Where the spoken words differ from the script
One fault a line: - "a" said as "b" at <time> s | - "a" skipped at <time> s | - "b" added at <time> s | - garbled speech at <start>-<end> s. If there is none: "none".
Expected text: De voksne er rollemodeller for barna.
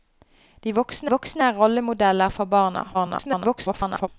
- "voksne" added at 1.1 s
- garbled speech at 2.9-4.1 s